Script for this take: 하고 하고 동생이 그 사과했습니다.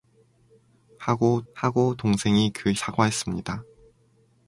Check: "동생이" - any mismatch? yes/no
no